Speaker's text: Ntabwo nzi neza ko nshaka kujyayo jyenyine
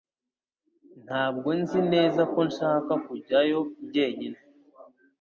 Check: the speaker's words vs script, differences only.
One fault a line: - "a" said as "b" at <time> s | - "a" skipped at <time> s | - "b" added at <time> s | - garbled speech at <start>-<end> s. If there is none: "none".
none